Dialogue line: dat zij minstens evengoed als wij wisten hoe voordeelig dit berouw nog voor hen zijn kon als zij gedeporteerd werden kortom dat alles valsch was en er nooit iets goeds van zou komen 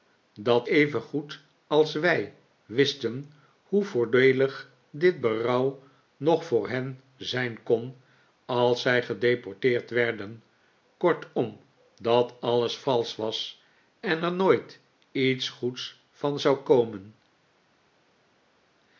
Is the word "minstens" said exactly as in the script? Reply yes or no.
no